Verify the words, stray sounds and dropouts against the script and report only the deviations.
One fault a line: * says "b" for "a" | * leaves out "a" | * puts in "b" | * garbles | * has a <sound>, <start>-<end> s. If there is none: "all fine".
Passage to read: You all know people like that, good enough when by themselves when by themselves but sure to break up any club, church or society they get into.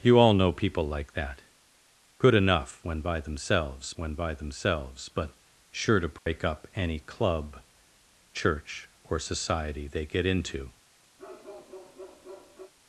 * has a dropout, 6.2-6.3 s
* has a bark, 11.2-12.7 s